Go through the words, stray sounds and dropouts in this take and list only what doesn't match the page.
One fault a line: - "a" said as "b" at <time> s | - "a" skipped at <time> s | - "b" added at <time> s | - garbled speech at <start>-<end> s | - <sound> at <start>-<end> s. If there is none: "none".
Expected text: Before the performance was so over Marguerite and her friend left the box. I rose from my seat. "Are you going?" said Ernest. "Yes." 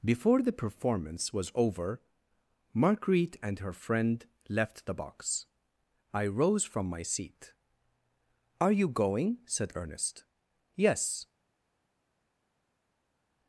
- "so" skipped at 1.5 s